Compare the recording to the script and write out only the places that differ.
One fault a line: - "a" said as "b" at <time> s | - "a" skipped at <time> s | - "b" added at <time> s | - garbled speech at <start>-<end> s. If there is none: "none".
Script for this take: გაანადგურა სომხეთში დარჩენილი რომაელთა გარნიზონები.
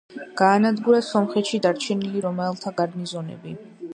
none